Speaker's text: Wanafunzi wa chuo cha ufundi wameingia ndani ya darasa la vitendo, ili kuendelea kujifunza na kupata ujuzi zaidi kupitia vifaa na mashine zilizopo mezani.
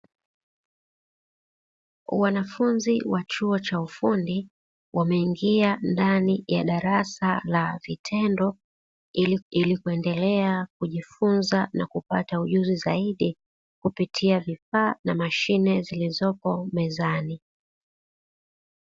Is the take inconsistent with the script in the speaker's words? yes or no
yes